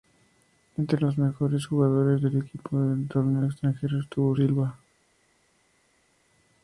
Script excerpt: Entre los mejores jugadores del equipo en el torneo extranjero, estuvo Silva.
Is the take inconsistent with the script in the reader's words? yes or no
no